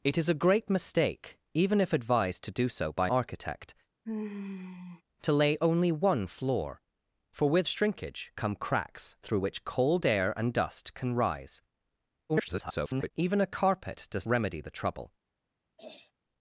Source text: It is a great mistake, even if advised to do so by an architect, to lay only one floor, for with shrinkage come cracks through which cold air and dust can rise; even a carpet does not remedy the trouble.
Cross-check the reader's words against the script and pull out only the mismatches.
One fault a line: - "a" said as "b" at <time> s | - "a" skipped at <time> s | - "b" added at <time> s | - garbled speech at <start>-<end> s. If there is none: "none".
- "an" skipped at 3.1 s
- garbled speech at 12.3-13.1 s
- "not" skipped at 14.3 s